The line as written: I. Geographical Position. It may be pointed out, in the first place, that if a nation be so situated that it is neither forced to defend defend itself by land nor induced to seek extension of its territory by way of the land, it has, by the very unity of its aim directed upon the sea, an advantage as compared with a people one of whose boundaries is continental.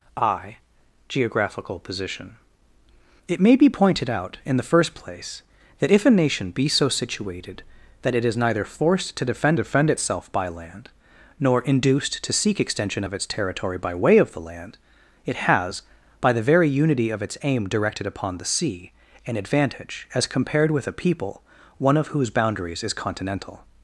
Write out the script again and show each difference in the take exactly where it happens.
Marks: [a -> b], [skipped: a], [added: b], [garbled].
I. Geographical Position. It may be pointed out, in the first place, that if a nation be so situated that it is neither forced to defend defend itself by land nor induced to seek extension of its territory by way of the land, it has, by the very unity of its aim directed upon the sea, an advantage as compared with a people one of whose boundaries is continental.